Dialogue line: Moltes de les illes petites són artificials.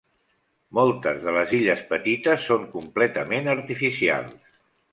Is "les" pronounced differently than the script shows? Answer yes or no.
no